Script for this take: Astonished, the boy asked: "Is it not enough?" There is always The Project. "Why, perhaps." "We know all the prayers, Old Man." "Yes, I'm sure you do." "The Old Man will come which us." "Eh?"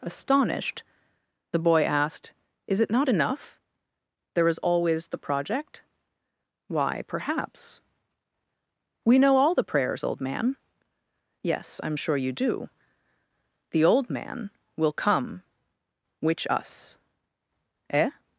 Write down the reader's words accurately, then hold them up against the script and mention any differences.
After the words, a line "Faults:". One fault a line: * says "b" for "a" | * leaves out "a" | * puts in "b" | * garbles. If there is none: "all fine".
Astonished, the boy asked: "Is it not enough?" There is always The Project. "Why, perhaps." "We know all the prayers, Old Man." "Yes, I'm sure you do." "The Old Man will come which us." "Eh?"
Faults:
all fine